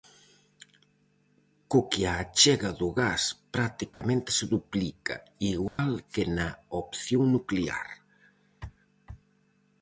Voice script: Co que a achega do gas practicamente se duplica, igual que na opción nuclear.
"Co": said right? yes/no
yes